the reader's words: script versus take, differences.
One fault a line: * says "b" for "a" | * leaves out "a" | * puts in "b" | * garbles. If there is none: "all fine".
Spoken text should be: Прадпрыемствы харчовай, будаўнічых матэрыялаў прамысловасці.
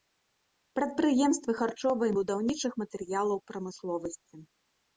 all fine